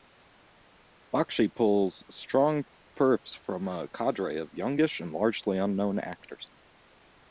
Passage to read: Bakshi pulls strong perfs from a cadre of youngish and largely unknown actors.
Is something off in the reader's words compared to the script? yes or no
no